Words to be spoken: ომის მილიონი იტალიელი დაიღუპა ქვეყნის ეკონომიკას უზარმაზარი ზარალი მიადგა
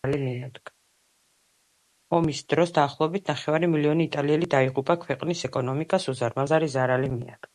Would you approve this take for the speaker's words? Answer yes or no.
no